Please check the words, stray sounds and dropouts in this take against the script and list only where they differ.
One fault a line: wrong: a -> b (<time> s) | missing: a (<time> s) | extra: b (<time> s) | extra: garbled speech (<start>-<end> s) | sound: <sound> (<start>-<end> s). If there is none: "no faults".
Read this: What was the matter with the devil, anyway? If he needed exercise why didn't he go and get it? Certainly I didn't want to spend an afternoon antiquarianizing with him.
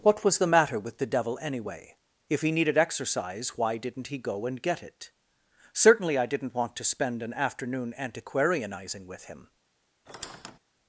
sound: squeak (10.1-10.6 s)